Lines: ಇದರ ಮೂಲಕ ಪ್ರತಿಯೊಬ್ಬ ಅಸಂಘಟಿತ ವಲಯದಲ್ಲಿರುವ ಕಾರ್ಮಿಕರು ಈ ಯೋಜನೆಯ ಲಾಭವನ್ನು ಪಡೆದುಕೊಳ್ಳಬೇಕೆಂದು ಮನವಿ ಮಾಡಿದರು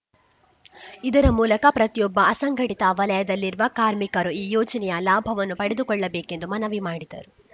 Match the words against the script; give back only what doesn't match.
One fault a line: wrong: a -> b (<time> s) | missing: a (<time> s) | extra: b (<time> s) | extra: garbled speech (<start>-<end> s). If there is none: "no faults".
no faults